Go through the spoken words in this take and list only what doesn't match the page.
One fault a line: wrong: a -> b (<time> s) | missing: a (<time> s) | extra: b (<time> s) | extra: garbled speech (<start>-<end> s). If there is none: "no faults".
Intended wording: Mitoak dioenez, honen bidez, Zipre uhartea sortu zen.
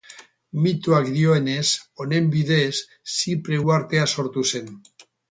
no faults